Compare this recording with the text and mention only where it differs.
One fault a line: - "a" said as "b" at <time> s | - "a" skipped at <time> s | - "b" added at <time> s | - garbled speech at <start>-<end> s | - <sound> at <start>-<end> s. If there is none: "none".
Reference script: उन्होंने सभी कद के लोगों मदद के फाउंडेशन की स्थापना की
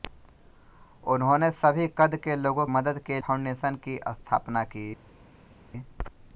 none